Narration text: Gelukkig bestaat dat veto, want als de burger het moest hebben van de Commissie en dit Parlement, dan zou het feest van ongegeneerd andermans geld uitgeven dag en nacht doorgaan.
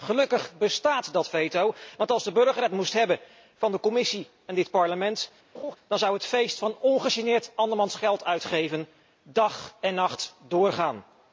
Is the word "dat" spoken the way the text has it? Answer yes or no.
yes